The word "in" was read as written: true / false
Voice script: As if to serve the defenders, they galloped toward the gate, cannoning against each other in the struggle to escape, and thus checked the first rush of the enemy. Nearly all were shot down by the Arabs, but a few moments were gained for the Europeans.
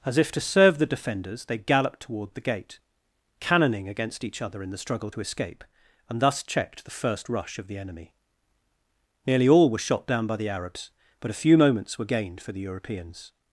true